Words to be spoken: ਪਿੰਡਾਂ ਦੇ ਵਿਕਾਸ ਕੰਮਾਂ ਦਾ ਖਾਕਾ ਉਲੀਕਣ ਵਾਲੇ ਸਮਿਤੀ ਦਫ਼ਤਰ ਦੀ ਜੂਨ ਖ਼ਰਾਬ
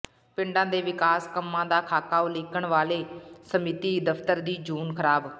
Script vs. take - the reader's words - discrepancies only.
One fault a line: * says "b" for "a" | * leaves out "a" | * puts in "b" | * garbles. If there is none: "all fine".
all fine